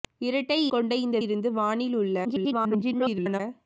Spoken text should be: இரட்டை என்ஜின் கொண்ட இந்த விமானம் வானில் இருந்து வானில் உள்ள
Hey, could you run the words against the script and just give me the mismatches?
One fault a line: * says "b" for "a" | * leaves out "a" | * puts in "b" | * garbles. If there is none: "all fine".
* leaves out "என்ஜின்"
* leaves out "விமானம் வானில்"
* garbles